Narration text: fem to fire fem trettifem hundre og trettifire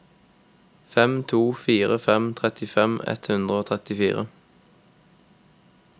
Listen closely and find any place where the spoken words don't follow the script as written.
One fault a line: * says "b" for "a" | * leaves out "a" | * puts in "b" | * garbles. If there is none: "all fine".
* puts in "ett"